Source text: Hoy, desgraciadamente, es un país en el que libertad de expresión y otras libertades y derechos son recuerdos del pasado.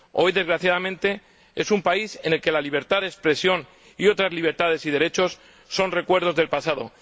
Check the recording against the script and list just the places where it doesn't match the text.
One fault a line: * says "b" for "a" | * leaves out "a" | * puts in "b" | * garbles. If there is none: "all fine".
* puts in "la"